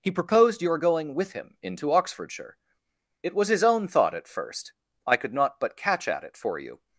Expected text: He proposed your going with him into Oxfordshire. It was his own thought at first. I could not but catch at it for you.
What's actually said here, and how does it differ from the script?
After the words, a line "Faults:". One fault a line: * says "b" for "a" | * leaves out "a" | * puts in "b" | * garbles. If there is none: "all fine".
He proposed your going with him into Oxfordshire. It was his own thought at first. I could not but catch at it for you.
Faults:
all fine